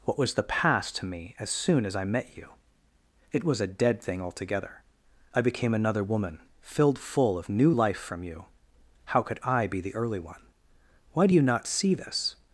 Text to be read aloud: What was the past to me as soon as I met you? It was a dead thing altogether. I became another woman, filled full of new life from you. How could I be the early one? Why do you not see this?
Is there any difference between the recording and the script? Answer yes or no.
no